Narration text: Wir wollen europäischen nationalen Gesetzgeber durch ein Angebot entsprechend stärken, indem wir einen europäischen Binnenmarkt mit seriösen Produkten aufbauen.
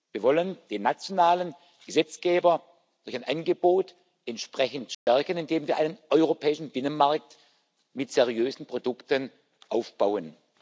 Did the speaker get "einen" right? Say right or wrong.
right